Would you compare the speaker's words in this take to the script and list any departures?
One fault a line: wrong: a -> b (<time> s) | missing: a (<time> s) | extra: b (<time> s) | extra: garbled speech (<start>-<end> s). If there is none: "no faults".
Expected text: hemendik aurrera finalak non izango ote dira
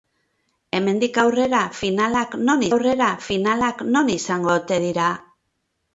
extra: aurrera finalak non (2.7 s)